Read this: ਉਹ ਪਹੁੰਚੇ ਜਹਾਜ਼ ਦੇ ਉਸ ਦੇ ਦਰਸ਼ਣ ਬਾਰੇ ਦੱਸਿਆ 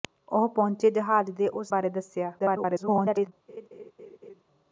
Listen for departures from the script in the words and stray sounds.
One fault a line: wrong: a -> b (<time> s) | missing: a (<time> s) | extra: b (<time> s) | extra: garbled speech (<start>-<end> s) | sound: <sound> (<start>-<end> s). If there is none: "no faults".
missing: ਦੇ ਦਰਸ਼ਣ (1.7 s)
extra: garbled speech (2.4-3.3 s)
sound: laugh (3.5-4.4 s)